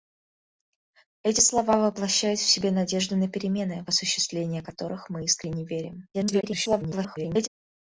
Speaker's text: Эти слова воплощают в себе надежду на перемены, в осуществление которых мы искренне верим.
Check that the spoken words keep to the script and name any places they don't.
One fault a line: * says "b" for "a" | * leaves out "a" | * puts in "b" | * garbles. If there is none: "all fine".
* garbles